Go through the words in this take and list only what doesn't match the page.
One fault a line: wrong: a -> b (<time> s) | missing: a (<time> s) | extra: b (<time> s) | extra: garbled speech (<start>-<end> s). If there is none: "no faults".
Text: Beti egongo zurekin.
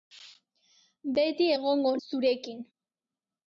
no faults